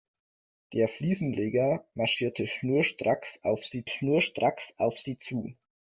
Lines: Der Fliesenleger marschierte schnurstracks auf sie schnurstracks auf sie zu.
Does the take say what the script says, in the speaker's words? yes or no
yes